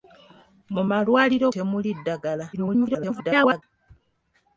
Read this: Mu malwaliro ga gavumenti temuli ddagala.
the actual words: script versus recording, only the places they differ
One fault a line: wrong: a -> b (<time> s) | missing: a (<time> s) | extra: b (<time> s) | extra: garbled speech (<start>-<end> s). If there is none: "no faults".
missing: ga gavumenti (1.5 s)
extra: garbled speech (2.5-3.6 s)